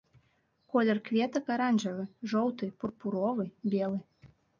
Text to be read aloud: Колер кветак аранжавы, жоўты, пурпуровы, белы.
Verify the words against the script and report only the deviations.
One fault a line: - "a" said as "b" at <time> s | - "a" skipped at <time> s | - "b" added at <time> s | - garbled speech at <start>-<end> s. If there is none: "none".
none